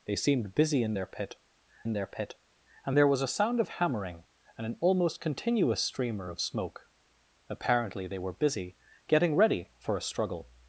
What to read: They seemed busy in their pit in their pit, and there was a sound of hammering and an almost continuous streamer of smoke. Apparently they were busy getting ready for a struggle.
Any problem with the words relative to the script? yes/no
no